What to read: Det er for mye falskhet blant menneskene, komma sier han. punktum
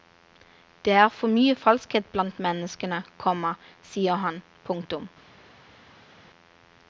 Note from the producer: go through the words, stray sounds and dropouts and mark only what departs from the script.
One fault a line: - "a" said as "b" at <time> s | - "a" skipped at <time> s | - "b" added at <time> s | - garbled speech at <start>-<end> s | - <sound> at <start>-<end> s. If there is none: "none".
none